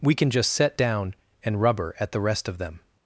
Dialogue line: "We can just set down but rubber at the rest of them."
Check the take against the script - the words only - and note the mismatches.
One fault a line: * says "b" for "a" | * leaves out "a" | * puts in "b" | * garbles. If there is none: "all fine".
* says "and" for "but"